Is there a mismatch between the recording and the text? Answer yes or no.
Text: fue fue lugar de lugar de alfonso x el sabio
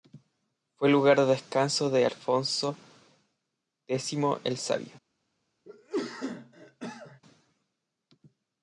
yes